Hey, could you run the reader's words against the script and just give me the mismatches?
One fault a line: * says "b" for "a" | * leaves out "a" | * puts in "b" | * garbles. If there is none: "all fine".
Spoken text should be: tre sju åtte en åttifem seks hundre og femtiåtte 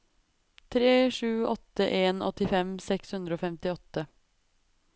all fine